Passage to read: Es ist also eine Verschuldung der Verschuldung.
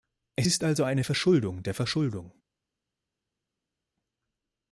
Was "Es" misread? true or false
false